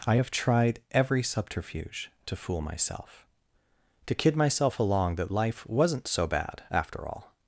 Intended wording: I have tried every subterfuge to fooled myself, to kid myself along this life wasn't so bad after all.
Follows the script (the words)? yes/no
no